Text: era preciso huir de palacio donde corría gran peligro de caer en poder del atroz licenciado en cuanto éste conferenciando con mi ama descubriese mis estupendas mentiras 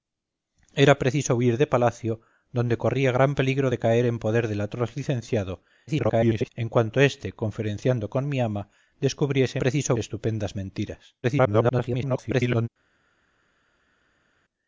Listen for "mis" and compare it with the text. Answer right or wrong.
wrong